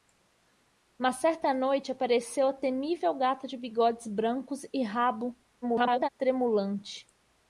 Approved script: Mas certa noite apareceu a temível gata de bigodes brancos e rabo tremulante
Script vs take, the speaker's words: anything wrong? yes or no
yes